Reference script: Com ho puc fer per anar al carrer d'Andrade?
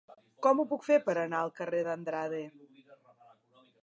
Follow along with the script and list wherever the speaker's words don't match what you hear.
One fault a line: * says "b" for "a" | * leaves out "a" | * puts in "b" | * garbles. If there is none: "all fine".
all fine